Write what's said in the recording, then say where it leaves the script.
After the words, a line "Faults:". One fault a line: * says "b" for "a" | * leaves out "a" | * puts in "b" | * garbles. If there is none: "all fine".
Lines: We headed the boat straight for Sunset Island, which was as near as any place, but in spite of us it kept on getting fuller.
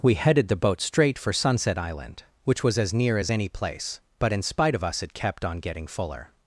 We headed the boat straight for Sunset Island, which was as near as any place, but in spite of us it kept on getting fuller.
Faults:
all fine